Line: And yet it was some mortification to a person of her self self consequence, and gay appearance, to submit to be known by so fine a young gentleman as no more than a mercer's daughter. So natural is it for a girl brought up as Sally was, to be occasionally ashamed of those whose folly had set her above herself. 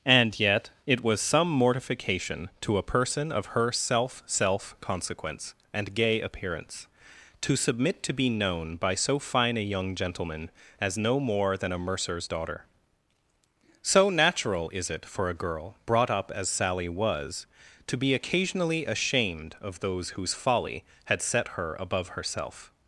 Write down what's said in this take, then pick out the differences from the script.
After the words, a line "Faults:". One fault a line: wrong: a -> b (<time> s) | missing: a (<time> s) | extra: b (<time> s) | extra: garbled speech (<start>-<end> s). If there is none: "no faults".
And yet it was some mortification to a person of her self self consequence, and gay appearance, to submit to be known by so fine a young gentleman as no more than a mercer's daughter. So natural is it for a girl brought up as Sally was, to be occasionally ashamed of those whose folly had set her above herself.
Faults:
no faults